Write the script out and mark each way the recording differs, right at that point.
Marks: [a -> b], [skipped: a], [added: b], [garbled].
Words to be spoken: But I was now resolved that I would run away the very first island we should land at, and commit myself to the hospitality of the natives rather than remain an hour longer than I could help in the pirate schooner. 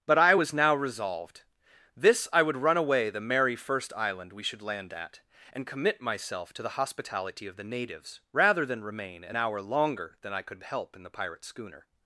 But I was now resolved [that -> this] I would run away the [very -> merry] first island we should land at, and commit myself to the hospitality of the natives rather than remain an hour longer than I could help in the pirate schooner.